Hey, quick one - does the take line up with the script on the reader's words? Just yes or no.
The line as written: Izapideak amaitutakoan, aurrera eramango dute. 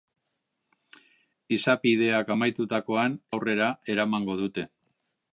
yes